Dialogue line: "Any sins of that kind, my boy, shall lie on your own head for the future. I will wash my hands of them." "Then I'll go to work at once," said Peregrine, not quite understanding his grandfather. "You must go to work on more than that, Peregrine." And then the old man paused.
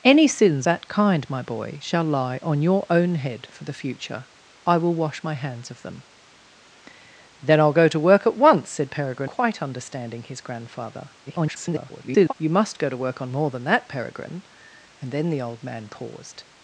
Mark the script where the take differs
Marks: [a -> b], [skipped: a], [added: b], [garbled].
"Any sins [skipped: of] that kind, my boy, shall lie on your own head for the future. I will wash my hands of them." "Then I'll go to work at once," said Peregrine, [skipped: not] quite understanding his grandfather. [garbled] "You must go to work on more than that, Peregrine." And then the old man paused.